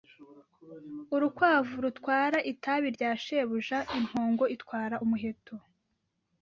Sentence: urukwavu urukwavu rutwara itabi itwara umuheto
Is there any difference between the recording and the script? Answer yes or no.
yes